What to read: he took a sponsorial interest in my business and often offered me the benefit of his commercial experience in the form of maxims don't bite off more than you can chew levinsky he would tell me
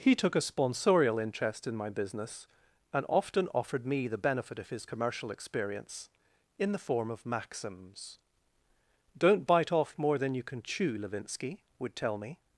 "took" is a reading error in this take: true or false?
false